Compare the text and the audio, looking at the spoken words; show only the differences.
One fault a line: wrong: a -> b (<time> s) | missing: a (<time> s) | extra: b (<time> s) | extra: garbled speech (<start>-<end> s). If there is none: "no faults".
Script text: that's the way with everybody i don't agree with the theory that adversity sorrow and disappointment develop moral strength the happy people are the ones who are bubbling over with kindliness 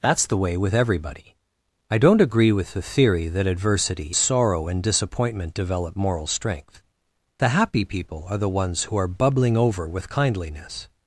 no faults